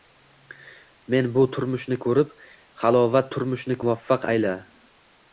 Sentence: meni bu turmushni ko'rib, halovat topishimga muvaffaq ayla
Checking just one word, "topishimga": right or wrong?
wrong